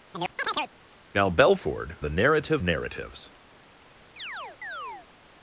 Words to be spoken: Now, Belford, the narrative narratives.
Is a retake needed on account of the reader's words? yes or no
no